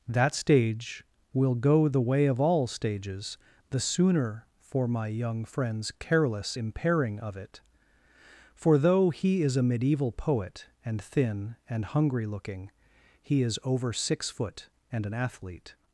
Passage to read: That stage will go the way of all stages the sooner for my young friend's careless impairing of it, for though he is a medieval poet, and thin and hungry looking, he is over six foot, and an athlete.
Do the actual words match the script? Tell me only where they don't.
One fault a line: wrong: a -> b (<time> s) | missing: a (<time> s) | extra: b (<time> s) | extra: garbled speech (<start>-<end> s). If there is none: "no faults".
no faults